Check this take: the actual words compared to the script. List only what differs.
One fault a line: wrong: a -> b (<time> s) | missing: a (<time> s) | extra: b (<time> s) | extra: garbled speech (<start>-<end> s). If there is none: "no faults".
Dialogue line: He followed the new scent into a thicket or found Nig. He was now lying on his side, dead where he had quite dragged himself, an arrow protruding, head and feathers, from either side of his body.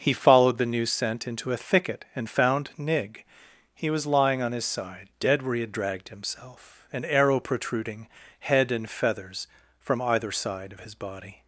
wrong: or -> and (2.1 s)
missing: now (4.1 s)
missing: quite (5.7 s)